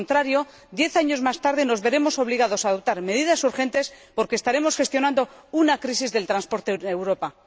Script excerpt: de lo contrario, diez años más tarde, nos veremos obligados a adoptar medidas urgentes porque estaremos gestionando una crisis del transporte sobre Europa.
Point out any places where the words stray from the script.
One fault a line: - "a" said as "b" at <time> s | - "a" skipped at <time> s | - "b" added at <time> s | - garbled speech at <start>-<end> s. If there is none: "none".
- "sobre" said as "en" at 6.7 s